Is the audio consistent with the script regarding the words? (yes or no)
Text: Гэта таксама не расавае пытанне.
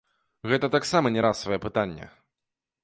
yes